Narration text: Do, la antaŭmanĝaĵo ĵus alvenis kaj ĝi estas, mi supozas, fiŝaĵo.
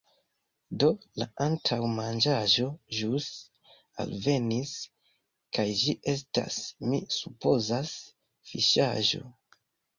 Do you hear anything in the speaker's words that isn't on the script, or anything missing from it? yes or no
no